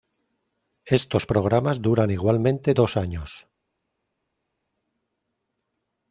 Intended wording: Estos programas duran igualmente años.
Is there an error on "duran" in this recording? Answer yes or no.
no